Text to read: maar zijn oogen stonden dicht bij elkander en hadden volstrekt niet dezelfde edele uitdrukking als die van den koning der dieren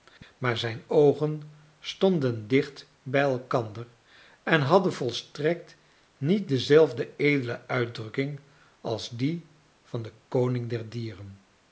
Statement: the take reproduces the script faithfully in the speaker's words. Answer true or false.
true